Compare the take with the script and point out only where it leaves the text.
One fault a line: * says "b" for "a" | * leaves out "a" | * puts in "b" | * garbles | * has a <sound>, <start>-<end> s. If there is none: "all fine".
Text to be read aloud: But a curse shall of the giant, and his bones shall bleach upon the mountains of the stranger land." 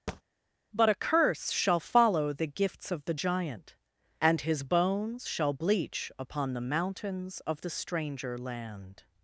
* has a thud, 0.1-0.2 s
* puts in "follow the gifts"